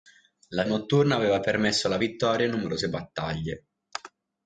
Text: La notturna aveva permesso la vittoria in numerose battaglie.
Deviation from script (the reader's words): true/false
false